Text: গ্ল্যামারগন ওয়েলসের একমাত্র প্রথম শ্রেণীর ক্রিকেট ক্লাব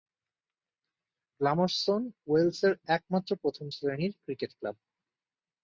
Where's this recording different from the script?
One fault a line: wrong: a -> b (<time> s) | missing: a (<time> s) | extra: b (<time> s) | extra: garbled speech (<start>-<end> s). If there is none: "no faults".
no faults